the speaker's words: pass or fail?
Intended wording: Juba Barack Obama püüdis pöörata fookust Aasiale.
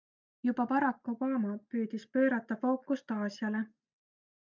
pass